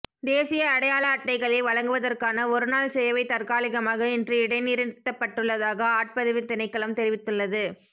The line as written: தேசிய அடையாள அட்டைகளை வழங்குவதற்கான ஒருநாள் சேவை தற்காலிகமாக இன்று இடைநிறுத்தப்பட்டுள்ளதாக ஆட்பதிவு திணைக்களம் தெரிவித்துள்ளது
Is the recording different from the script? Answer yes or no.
no